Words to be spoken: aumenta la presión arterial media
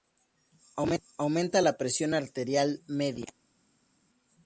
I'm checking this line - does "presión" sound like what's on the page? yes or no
yes